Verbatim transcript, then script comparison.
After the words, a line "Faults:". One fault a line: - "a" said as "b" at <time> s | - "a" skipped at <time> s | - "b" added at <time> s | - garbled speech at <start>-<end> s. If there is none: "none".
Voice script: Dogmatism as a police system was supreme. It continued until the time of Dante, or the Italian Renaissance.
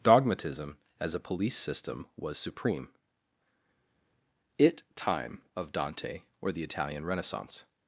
Dogmatism as a police system was supreme. It time of Dante, or the Italian Renaissance.
Faults:
- "continued until the" skipped at 4.8 s